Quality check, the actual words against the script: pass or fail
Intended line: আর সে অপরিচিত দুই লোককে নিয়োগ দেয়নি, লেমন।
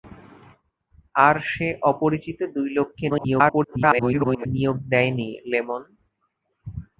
fail